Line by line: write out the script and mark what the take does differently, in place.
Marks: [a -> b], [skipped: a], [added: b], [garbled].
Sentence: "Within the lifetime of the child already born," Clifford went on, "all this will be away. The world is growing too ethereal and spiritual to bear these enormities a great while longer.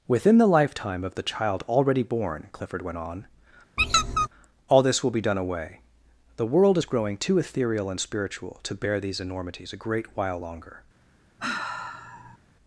"Within the lifetime of the child already born," Clifford went on, "all this will be [added: done] away. The world is growing too ethereal and spiritual to bear these enormities a great while longer.